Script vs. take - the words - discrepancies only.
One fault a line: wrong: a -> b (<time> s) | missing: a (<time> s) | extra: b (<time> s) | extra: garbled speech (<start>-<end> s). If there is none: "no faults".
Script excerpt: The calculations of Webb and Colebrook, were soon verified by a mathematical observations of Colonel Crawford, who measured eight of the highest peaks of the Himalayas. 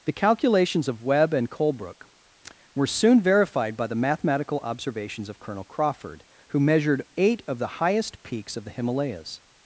wrong: a -> the (3.9 s)